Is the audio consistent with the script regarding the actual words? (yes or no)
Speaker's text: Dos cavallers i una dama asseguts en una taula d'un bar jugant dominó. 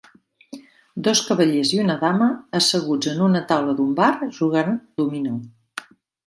yes